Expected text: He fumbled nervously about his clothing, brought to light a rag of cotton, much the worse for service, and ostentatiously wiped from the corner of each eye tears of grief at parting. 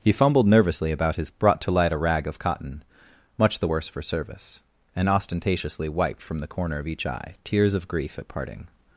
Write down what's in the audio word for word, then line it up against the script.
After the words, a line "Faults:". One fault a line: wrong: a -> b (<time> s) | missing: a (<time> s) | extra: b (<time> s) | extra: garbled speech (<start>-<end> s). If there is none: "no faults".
He fumbled nervously about his brought to light a rag of cotton, much the worse for service, and ostentatiously wiped from the corner of each eye tears of grief at parting.
Faults:
missing: clothing (1.3 s)